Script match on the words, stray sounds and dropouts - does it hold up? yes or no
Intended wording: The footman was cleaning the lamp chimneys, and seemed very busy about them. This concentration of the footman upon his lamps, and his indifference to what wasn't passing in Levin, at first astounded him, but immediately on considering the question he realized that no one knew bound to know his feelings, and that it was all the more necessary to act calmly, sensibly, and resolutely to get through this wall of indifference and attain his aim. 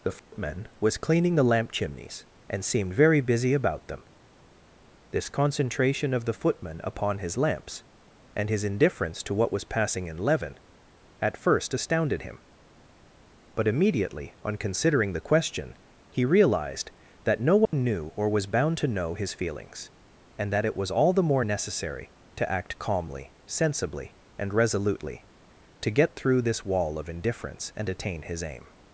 no